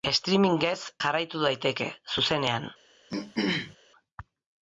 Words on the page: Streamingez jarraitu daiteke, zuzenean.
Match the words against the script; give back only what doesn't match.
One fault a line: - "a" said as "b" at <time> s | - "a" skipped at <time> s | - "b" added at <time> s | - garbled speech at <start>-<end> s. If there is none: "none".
none